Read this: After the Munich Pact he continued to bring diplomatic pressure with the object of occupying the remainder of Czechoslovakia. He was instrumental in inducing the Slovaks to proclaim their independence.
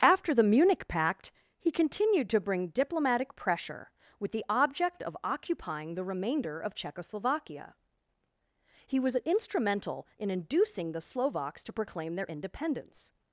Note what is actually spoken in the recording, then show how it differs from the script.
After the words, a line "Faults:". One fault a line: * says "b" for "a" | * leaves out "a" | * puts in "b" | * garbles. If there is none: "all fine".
After the Munich Pact he continued to bring diplomatic pressure with the object of occupying the remainder of Czechoslovakia. He was instrumental in inducing the Slovaks to proclaim their independence.
Faults:
all fine